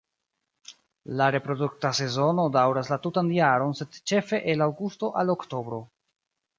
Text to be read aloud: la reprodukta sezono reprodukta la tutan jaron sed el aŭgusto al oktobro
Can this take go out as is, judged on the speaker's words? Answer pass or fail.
fail